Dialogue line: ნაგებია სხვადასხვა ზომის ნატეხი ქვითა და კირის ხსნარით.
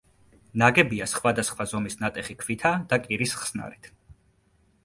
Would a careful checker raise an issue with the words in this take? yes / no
no